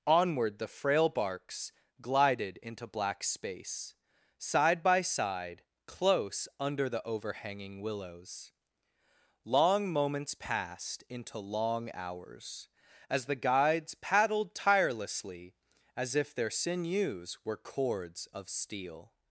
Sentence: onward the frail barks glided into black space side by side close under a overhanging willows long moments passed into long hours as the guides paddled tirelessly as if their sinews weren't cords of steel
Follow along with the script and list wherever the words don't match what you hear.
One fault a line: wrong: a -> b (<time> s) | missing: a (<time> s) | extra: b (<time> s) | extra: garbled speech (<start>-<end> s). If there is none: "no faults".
wrong: a -> the (6.9 s)
wrong: weren't -> were (17.4 s)